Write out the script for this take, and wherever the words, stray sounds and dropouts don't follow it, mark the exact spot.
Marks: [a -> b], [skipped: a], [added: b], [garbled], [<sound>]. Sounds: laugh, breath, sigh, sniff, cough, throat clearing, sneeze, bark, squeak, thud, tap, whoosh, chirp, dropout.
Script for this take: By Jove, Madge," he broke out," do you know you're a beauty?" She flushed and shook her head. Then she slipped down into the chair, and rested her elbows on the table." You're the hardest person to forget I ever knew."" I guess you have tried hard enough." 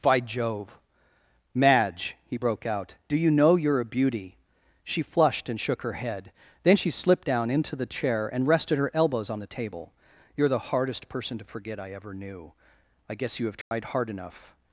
By Jove, Madge," he broke out," do you know you're a beauty?" She flushed and shook her head. Then she slipped down into the chair, and rested her elbows on the table." You're the hardest person to forget I ever knew."" I guess you have tried [dropout] hard enough."